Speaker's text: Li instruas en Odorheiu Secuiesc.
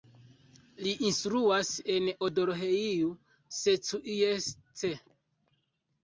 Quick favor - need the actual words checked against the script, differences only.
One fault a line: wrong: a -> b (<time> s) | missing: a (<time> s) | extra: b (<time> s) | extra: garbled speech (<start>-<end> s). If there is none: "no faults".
no faults